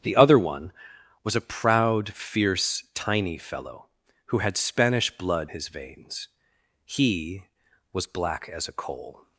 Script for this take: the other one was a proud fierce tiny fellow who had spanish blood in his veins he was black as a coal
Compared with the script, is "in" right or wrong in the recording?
wrong